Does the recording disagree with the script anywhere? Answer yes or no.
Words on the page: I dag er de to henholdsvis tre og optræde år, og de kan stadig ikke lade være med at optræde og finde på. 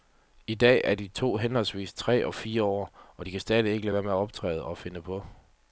yes